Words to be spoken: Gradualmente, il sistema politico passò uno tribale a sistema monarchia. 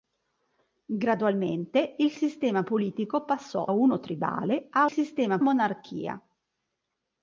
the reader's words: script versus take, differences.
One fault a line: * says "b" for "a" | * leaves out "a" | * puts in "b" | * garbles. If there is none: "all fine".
all fine